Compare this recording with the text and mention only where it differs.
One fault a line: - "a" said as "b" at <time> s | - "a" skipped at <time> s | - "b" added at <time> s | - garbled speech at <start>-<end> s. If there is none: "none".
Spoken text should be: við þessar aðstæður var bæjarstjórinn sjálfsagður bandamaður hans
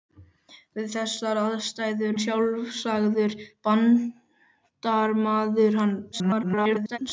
- "var bæjarstjórinn" skipped at 2.1 s
- garbled speech at 6.1-7.0 s